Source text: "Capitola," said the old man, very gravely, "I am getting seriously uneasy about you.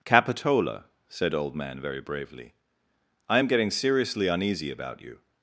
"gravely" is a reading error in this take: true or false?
true